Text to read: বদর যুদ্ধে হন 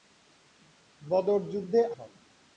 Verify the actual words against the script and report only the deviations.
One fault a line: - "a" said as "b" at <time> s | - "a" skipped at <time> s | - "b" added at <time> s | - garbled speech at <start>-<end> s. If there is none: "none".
none